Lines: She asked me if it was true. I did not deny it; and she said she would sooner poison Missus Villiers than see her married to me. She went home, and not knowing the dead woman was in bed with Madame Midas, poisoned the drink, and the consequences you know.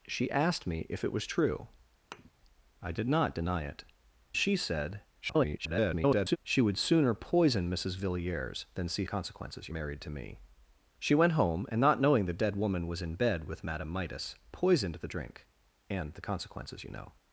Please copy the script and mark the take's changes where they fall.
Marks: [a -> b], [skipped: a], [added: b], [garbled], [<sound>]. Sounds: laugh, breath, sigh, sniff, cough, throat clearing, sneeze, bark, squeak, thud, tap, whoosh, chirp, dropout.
She asked me if it was true. [thud] I did not deny it; [skipped: and] she said [garbled] she would sooner poison Missus Villiers than see [her -> consequences] married to me. She went home, and not knowing the dead woman was in bed with Madame Midas, poisoned the drink, and the consequences you know.